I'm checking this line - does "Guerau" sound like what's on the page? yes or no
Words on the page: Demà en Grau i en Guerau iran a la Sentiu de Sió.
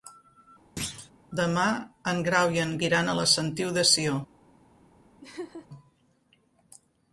no